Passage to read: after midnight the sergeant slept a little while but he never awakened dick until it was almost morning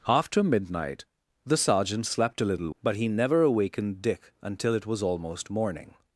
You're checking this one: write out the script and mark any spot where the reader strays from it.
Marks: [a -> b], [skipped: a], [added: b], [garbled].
after midnight the sergeant slept a little [skipped: while] but he never awakened dick until it was almost morning